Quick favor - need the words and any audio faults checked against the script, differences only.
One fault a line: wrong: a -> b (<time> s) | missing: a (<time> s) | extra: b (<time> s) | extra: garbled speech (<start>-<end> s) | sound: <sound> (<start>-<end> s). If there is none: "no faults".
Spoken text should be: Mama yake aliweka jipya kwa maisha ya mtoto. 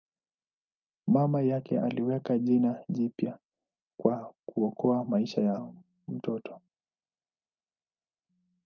extra: jina (2.4 s)
extra: kuokoa (4.5 s)